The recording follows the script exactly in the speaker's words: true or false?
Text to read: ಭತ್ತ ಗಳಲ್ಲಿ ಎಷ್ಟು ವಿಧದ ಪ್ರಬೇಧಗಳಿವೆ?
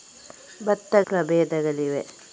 false